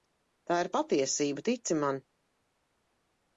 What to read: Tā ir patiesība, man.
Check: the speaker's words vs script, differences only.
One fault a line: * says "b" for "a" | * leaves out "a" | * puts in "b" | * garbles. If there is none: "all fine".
* puts in "tici"